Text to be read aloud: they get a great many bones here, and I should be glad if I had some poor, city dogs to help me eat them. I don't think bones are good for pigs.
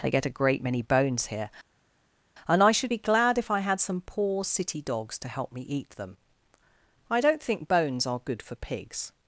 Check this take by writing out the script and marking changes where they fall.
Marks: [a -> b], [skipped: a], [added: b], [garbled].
they get a great many bones here, and I should be glad if I had some poor, city dogs to help me eat them. I don't think bones are good for pigs.